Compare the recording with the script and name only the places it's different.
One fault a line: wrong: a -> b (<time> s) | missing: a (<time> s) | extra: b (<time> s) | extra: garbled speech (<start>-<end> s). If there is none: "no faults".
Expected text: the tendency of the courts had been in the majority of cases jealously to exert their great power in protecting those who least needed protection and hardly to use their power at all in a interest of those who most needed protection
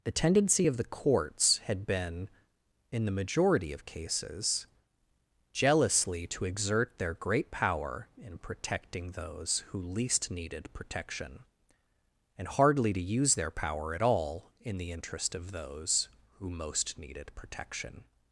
wrong: a -> the (14.8 s)